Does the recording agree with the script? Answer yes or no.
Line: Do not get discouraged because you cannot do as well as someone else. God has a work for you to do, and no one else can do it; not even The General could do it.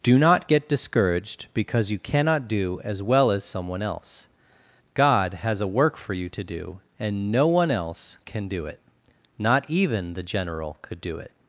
yes